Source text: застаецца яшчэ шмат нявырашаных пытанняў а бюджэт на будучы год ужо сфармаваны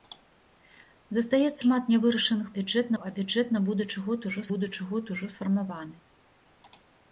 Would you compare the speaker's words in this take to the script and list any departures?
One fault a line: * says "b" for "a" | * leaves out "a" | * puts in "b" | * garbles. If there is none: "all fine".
* leaves out "яшчэ"
* says "бюджэт" for "пытанняў"
* puts in "будучы год ужо"